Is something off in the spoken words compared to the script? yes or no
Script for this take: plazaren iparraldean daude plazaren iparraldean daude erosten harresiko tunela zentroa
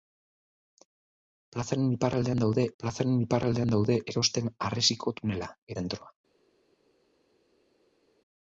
no